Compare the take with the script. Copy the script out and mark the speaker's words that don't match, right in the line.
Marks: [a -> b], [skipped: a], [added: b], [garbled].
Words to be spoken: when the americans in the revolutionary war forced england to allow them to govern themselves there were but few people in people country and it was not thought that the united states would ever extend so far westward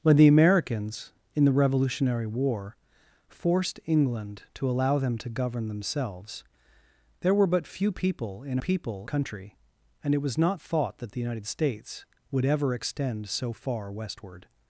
when the americans in the revolutionary war forced england to allow them to govern themselves there were but few people in people country and it was not thought that the united states would ever extend so far westward